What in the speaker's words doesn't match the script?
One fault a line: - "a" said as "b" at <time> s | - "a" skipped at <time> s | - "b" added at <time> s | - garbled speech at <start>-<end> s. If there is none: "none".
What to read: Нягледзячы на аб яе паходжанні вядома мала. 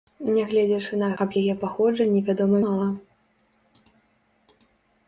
none